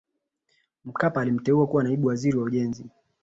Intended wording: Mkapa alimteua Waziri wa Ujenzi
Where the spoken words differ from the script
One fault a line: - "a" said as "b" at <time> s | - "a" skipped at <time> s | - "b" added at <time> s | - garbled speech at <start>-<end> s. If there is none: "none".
- "kuwa Naibu" added at 1.7 s